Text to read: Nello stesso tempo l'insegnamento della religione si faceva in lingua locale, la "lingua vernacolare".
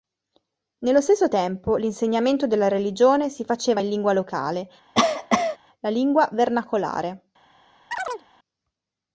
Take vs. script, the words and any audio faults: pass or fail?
fail